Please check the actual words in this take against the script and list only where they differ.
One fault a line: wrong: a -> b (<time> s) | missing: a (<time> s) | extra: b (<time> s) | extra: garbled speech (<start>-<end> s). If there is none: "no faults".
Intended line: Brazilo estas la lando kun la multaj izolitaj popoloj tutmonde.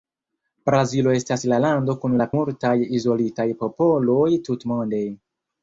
no faults